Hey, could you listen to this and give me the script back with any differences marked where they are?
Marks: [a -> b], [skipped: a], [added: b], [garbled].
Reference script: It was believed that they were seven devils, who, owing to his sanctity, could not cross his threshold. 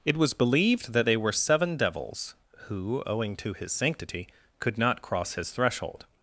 It was believed that they were seven devils, who, owing to his sanctity, could not cross his threshold.